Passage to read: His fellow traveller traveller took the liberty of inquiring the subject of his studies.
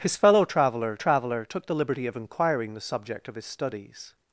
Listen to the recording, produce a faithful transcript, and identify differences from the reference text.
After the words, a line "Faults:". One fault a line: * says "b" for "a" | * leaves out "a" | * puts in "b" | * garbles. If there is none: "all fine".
His fellow traveller traveller took the liberty of inquiring the subject of his studies.
Faults:
all fine